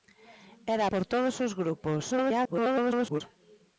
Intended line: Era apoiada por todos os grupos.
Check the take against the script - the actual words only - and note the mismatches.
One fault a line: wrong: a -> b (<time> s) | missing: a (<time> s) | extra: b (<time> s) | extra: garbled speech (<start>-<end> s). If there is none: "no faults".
missing: apoiada (0.8 s)
extra: garbled speech (2.1-3.2 s)